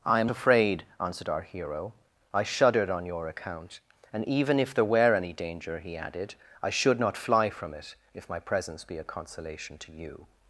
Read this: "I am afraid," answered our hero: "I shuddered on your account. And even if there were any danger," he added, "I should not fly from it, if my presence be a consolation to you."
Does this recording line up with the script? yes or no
yes